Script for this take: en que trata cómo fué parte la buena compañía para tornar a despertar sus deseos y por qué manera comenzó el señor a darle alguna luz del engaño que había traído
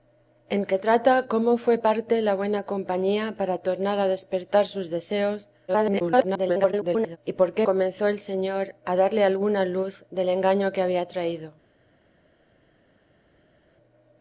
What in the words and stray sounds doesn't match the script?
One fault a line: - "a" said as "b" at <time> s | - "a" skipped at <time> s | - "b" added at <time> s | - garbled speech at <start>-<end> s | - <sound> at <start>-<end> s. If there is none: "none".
- garbled speech at 5.7-7.2 s
- "manera" skipped at 7.7 s